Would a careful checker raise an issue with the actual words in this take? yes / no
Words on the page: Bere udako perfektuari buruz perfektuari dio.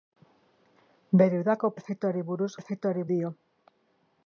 no